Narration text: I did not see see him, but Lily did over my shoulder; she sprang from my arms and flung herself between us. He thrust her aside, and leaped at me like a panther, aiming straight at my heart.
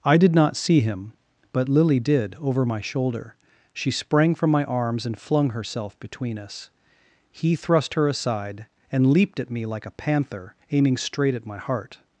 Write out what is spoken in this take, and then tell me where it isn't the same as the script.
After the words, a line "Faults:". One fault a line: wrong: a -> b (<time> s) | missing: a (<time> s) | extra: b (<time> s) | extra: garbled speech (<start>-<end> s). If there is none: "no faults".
I did not see him, but Lily did over my shoulder; she sprang from my arms and flung herself between us. He thrust her aside, and leaped at me like a panther, aiming straight at my heart.
Faults:
missing: see (0.8 s)